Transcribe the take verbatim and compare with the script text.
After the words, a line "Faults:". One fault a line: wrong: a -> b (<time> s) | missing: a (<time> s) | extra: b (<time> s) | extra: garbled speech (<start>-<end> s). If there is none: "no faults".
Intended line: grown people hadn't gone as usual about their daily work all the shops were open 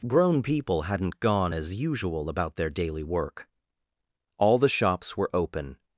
grown people hadn't gone as usual about their daily work all the shops were open
Faults:
no faults